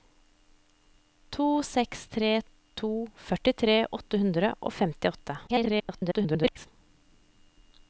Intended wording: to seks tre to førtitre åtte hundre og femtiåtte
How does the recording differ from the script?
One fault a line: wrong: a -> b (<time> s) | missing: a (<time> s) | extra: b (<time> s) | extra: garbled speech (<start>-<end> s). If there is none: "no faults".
extra: garbled speech (5.5-6.7 s)